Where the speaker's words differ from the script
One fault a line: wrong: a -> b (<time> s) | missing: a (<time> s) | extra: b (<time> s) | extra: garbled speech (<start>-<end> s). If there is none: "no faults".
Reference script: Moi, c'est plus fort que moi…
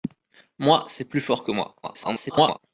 extra: garbled speech (1.8-2.6 s)